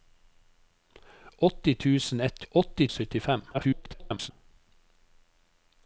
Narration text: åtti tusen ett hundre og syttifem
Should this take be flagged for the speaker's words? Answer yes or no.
yes